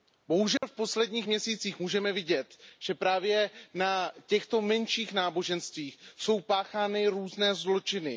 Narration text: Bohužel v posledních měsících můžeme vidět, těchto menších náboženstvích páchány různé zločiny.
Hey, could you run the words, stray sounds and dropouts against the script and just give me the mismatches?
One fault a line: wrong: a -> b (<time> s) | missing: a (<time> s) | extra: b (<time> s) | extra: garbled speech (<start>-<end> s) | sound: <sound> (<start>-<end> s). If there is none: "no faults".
sound: dropout (0.6-0.6 s)
extra: že právě na (2.8 s)
extra: jsou (6.2 s)